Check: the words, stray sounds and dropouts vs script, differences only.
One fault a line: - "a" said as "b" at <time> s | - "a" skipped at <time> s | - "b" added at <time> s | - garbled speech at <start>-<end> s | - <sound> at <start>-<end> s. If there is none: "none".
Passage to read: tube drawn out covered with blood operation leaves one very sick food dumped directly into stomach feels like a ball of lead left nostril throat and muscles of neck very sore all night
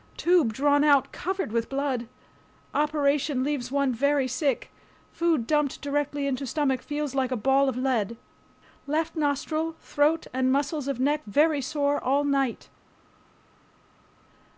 none